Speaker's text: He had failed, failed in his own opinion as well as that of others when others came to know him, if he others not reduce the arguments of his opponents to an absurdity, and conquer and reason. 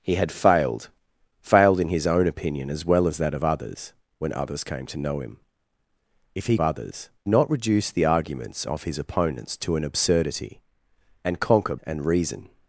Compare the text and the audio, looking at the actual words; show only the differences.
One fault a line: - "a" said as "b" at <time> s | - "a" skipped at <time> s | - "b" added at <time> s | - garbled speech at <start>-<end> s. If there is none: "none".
none